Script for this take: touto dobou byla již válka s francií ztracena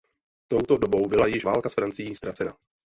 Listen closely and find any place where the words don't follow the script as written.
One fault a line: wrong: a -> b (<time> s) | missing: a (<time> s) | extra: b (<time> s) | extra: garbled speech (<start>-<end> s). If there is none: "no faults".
no faults